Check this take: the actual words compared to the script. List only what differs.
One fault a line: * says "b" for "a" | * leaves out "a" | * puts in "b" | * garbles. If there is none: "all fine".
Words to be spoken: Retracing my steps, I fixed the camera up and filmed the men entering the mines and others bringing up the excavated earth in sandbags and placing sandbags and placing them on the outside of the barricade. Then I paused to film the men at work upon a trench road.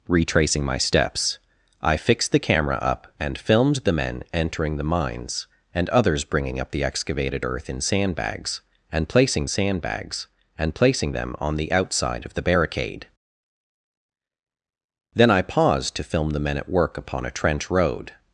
all fine